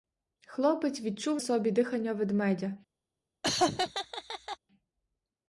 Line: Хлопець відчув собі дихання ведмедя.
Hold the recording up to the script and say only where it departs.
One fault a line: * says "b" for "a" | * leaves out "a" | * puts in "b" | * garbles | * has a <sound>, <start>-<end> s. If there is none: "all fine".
* has a laugh, 3.4-4.6 s